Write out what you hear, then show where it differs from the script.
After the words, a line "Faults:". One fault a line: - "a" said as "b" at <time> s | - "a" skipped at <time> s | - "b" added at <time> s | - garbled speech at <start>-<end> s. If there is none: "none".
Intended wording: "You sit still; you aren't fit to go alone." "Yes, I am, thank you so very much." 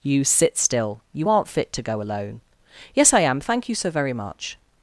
"You sit still; you aren't fit to go alone." "Yes, I am, thank you so very much."
Faults:
none